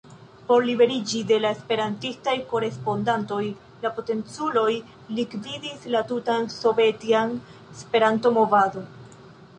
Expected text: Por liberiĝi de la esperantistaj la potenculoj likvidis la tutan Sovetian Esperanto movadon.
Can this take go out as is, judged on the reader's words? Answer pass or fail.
fail